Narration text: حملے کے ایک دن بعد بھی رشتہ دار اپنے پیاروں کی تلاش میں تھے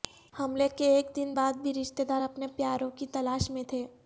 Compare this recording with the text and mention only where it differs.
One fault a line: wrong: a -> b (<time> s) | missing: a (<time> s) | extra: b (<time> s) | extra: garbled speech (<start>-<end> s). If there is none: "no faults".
no faults